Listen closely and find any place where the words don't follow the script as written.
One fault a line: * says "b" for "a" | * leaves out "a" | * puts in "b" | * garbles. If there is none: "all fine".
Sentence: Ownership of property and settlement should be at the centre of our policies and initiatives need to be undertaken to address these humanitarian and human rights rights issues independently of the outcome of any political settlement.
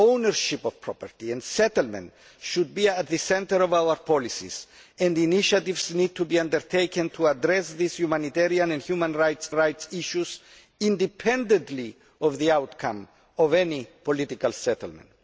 all fine